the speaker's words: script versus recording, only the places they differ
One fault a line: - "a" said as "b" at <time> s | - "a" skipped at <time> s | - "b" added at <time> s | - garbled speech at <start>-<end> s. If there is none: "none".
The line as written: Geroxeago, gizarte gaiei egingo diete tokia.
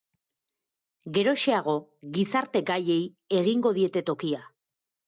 none